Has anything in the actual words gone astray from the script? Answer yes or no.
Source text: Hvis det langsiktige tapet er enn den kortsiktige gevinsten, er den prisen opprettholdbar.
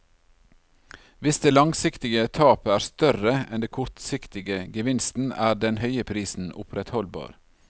yes